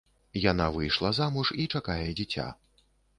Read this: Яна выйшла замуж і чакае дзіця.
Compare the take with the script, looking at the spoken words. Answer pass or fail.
pass